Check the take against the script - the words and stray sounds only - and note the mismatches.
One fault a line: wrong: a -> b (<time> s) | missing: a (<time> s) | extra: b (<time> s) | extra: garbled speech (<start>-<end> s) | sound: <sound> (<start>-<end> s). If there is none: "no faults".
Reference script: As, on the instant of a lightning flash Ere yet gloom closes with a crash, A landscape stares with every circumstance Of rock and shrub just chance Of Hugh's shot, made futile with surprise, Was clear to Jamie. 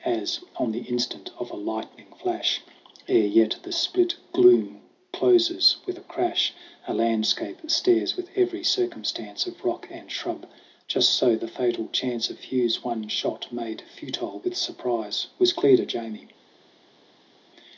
extra: the split (3.6 s)
extra: so the fatal (11.1 s)
extra: one (12.8 s)